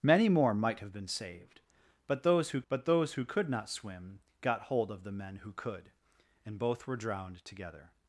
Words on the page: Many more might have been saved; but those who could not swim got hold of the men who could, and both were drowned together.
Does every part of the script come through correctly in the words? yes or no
no